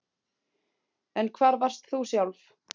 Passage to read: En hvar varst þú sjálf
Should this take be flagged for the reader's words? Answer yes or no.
no